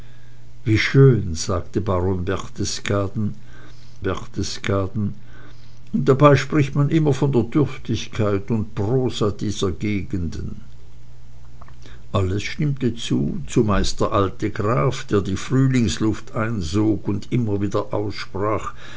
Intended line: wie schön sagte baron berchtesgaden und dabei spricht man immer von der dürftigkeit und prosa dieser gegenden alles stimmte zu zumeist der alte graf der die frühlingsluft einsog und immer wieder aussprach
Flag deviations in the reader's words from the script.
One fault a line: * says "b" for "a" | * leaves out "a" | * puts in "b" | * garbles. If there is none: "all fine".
* puts in "berchtesgaden"